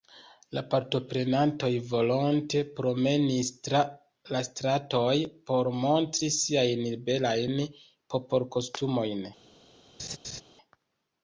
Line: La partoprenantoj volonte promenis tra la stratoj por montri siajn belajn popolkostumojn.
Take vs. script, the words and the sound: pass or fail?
fail